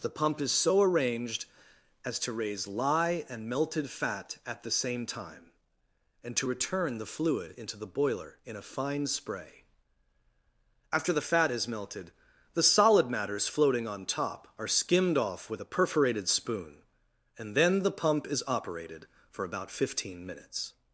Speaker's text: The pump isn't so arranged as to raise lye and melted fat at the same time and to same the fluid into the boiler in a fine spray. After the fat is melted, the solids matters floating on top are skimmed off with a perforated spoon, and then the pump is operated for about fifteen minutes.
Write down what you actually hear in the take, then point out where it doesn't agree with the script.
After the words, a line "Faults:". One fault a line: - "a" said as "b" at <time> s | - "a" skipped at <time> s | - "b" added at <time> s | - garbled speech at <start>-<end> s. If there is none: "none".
The pump is so arranged as to raise lye and melted fat at the same time and to return the fluid into the boiler in a fine spray. After the fat is melted, the solid matters floating on top are skimmed off with a perforated spoon, and then the pump is operated for about fifteen minutes.
Faults:
- "isn't" said as "is" at 0.4 s
- "same" said as "return" at 6.5 s
- "solids" said as "solid" at 12.6 s